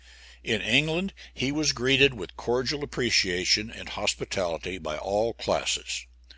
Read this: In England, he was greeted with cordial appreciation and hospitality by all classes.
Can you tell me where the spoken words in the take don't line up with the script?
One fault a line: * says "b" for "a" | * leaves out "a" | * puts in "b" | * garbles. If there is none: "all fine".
all fine